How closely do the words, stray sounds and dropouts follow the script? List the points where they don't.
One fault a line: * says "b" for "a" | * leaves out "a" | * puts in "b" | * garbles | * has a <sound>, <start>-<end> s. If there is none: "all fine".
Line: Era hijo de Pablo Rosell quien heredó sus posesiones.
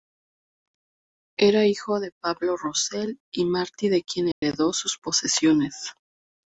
* puts in "y Martí de"
* has a dropout, 4.3-4.4 s